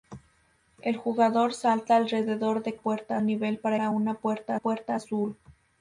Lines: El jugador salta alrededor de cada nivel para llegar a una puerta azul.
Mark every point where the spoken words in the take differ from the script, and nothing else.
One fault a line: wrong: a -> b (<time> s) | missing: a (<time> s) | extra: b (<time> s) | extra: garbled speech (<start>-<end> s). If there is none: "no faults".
wrong: cada -> puerta (2.7 s)
missing: llegar (3.8 s)
extra: puerta (4.5 s)